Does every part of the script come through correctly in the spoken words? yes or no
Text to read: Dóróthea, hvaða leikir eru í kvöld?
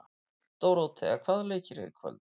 yes